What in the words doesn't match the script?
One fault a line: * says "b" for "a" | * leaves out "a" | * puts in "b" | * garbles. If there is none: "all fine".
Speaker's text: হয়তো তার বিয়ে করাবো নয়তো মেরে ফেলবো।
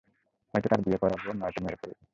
all fine